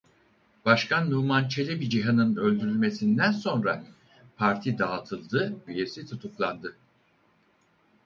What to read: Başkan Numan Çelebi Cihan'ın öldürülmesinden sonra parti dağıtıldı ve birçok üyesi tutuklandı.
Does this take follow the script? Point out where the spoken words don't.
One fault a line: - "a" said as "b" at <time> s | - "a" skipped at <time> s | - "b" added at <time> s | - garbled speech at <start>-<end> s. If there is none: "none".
- "ve birçok" skipped at 5.6 s